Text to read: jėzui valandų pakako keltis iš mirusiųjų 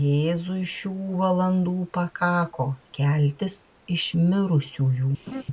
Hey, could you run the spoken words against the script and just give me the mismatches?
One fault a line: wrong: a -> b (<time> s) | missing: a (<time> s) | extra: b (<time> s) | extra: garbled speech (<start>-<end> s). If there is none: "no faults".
extra: šių (0.8 s)